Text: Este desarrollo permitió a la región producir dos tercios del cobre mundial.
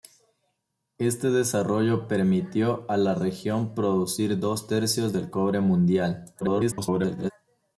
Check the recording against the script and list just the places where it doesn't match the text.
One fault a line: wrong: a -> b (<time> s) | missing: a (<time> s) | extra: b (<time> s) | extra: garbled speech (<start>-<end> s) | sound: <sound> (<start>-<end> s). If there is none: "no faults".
extra: garbled speech (6.4-7.3 s)